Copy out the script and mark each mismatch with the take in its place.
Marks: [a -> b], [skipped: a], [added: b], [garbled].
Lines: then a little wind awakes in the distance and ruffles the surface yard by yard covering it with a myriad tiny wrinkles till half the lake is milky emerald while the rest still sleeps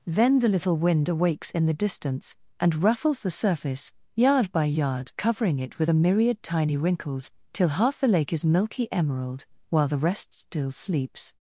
then [a -> the] little wind awakes in the distance and ruffles the surface yard by yard covering it with a myriad tiny wrinkles till half the lake is milky emerald while the rest still sleeps